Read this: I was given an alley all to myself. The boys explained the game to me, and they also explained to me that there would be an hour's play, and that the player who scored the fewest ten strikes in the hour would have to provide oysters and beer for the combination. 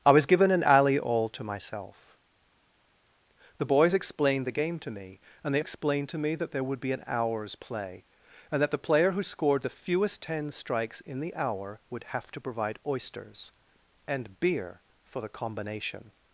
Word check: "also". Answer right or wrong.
wrong